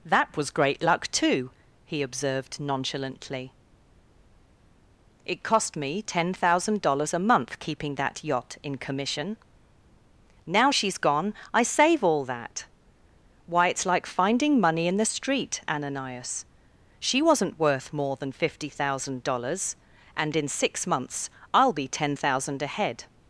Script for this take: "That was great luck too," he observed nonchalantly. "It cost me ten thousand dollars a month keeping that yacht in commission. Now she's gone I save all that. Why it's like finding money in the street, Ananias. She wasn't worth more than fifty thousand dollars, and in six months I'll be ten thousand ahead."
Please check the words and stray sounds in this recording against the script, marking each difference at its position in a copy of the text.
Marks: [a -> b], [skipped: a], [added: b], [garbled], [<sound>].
"That was great luck too," he observed nonchalantly. "It cost me ten thousand dollars a month keeping that yacht in commission. Now she's gone I save all that. Why it's like finding money in the street, Ananias. She wasn't worth more than fifty thousand dollars, and in six months I'll be ten thousand ahead."